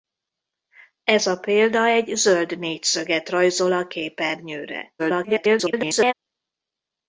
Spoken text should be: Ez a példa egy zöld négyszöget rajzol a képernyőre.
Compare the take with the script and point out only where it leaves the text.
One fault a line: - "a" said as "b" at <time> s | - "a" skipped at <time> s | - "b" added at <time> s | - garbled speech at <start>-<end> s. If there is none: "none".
- garbled speech at 5.0-6.1 s